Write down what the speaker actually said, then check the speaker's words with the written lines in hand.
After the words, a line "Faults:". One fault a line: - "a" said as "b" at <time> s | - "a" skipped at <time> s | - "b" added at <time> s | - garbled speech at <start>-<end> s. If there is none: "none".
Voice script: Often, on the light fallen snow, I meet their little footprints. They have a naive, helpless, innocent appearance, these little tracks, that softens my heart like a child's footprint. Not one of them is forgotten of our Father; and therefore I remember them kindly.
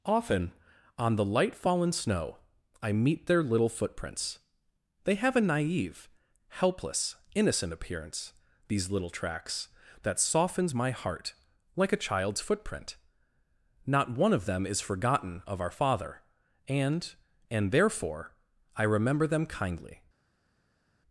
Often, on the light fallen snow, I meet their little footprints. They have a naive, helpless, innocent appearance, these little tracks, that softens my heart like a child's footprint. Not one of them is forgotten of our Father; and and therefore I remember them kindly.
Faults:
- "and" added at 17.5 s